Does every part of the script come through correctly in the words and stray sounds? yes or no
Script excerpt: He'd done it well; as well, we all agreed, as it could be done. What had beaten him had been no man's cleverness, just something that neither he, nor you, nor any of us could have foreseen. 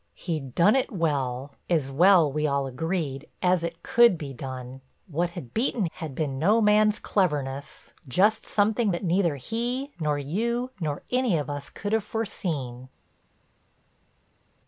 no